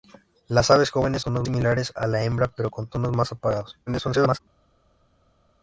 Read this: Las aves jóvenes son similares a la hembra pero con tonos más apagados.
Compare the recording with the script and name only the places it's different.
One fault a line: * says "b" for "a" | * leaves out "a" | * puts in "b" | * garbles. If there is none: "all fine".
* says "tonos" for "son"
* garbles